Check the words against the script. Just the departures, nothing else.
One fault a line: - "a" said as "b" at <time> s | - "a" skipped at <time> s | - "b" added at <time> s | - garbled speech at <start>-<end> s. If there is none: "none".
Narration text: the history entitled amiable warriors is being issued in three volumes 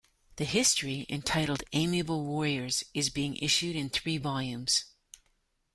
none